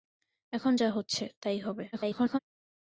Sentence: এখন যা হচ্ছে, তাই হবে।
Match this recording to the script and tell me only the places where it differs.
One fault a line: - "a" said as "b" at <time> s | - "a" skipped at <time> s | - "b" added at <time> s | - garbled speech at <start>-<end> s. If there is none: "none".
- garbled speech at 1.9-2.4 s